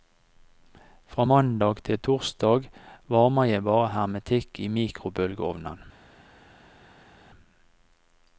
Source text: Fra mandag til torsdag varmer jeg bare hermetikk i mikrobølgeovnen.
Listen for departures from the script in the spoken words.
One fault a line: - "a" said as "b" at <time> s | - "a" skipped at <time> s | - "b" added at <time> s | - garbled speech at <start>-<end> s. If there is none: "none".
none